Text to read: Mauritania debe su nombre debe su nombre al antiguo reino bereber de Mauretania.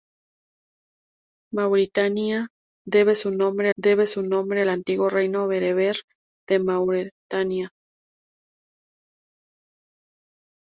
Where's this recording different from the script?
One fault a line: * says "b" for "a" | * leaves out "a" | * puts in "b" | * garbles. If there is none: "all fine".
all fine